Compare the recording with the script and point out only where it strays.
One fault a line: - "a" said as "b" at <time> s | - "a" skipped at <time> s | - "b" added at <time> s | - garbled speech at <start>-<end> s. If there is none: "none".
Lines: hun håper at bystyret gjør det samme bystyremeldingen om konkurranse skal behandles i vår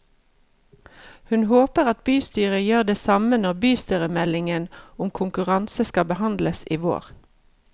- "når" added at 3.4 s